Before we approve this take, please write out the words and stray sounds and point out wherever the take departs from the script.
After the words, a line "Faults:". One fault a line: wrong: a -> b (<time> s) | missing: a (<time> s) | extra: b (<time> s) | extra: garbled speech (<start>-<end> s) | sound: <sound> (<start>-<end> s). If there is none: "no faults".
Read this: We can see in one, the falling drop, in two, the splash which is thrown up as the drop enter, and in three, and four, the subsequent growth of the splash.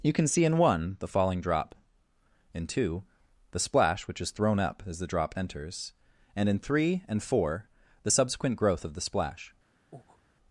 You can see in one, the falling drop, in two, the splash which is thrown up as the drop enters, and in three, and four, the subsequent growth of the splash.
Faults:
wrong: We -> You (0.0 s)
wrong: enter -> enters (5.4 s)
sound: breath (9.9-10.2 s)